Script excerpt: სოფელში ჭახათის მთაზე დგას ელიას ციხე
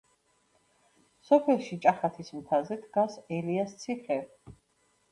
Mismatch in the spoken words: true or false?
false